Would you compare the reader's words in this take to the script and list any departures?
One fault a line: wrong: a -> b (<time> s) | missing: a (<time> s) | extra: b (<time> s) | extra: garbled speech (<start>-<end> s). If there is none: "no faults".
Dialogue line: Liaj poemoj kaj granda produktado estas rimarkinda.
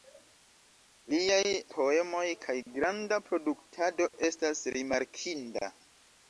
no faults